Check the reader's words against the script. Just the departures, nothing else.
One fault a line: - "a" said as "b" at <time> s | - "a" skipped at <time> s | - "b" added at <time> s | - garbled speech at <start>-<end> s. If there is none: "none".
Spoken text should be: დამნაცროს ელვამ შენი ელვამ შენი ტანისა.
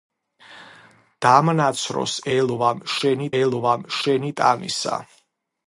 none